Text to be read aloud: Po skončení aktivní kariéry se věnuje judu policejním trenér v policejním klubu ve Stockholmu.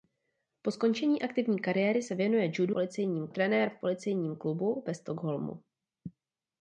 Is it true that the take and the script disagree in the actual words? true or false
false